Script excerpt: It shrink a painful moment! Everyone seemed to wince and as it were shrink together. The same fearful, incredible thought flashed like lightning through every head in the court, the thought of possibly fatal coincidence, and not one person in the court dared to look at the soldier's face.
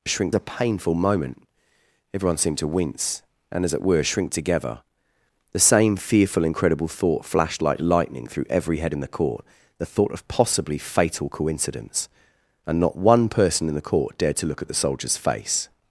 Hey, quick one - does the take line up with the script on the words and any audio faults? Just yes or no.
yes